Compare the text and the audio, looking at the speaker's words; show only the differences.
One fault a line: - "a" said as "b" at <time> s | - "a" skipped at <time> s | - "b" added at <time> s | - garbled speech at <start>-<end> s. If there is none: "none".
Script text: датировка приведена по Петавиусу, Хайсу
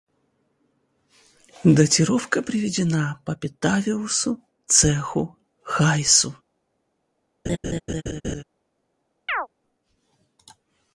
- "Цеху" added at 4.7 s